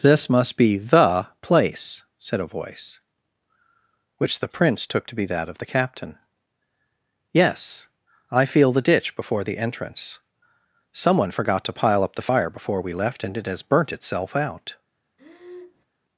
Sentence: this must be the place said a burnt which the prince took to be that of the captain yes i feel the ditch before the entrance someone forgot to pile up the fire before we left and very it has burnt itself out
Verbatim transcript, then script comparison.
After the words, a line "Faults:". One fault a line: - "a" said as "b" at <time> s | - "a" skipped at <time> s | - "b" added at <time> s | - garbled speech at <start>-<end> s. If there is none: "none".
this must be the place said a voice which the prince took to be that of the captain yes i feel the ditch before the entrance someone forgot to pile up the fire before we left and it has burnt itself out
Faults:
- "burnt" said as "voice" at 2.5 s
- "very" skipped at 13.4 s